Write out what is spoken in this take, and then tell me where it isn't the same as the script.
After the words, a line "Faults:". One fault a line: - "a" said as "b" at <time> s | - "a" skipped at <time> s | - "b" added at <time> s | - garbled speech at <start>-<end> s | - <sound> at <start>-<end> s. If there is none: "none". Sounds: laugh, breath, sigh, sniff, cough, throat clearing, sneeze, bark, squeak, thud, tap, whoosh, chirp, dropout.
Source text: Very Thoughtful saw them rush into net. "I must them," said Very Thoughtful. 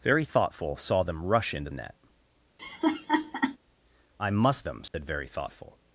Very Thoughtful saw them rush into net. "I must them," said Very Thoughtful.
Faults:
- laugh at 2.6-3.6 s
- dropout at 4.9-4.9 s